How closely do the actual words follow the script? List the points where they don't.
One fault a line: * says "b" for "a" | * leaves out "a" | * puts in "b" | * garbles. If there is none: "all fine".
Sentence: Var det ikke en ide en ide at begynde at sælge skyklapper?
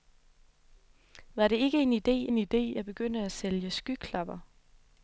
all fine